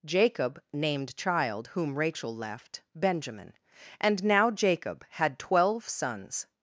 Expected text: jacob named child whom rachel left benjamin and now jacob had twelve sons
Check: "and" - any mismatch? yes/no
no